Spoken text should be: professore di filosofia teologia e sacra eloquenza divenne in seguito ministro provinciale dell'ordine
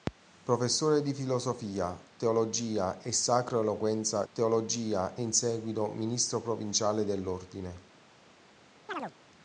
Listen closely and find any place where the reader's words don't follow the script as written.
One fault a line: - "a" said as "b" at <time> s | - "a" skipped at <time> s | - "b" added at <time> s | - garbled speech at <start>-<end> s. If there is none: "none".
- "divenne" said as "teologia" at 4.3 s